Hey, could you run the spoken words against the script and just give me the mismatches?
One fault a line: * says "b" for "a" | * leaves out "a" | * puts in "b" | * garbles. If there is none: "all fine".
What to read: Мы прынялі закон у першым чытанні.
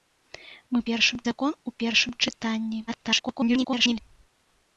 * says "першым" for "прынялі"
* garbles